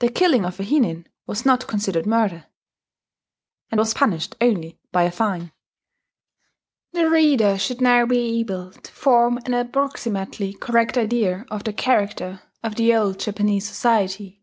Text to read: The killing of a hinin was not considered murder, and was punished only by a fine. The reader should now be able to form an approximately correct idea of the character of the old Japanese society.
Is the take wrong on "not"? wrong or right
right